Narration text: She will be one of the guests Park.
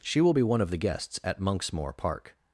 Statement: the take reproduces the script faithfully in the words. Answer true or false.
false